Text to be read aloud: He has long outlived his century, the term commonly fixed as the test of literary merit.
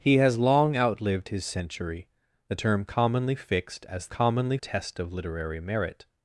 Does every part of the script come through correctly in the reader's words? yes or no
no